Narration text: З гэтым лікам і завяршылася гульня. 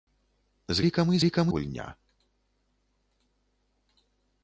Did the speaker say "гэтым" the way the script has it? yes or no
no